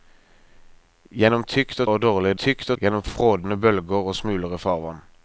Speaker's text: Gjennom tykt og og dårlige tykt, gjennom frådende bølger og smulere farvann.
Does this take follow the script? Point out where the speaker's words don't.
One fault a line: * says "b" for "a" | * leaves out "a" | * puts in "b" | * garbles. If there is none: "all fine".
all fine